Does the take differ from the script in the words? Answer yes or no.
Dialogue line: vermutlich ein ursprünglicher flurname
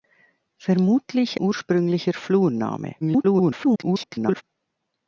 yes